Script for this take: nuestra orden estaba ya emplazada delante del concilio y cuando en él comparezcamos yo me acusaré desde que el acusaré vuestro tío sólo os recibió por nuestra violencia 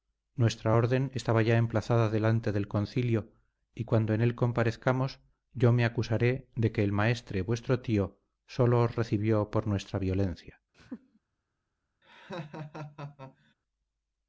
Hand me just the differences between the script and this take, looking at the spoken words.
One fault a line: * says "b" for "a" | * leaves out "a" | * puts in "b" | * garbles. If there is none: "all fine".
* says "de" for "desde"
* says "maestre" for "acusaré"